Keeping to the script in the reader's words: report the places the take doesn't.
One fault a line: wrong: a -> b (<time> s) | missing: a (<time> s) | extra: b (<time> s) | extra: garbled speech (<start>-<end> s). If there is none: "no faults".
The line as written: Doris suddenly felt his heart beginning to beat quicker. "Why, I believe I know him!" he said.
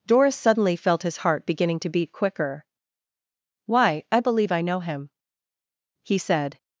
no faults